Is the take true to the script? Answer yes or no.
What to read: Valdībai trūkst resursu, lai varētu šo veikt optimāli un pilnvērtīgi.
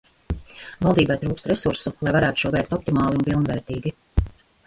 yes